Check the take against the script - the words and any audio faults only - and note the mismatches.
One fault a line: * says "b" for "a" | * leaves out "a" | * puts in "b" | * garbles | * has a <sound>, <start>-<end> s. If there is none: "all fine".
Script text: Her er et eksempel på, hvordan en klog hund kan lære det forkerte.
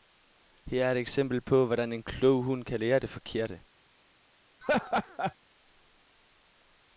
* has a laugh, 4.6-5.3 s